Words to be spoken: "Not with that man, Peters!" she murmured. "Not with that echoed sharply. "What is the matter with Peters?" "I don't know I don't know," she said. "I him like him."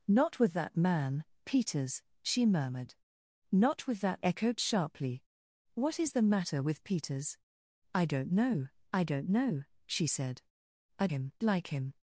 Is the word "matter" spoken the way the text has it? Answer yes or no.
yes